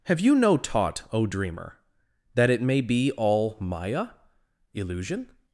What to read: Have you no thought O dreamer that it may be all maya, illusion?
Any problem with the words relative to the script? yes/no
yes